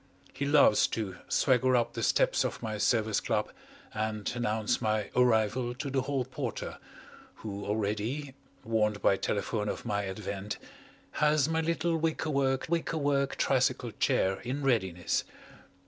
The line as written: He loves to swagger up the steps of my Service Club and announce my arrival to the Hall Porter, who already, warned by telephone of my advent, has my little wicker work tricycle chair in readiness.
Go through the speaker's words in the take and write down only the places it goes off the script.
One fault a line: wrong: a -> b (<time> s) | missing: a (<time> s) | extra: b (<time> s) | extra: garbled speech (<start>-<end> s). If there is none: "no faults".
extra: wicker work (12.7 s)